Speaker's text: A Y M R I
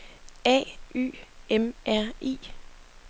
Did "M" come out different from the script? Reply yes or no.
no